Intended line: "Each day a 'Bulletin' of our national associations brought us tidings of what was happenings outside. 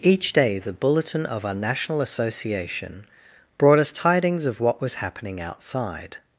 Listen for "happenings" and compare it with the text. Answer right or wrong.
wrong